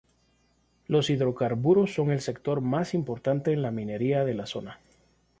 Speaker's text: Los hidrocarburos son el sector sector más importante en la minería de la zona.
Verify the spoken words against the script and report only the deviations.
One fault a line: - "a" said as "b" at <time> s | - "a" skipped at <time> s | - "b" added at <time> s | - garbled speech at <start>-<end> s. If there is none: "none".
- "sector" skipped at 2.6 s